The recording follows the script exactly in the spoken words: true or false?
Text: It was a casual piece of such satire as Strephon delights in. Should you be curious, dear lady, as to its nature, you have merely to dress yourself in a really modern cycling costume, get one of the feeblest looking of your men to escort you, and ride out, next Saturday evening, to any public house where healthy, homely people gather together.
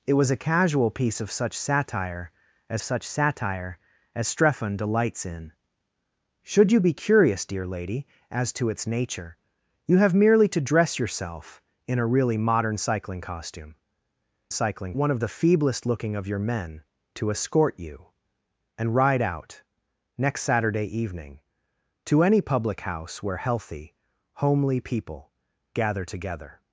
false